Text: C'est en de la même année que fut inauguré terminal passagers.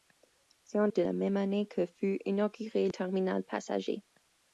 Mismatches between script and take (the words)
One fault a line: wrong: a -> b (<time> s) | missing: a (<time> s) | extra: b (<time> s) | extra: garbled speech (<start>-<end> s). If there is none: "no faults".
no faults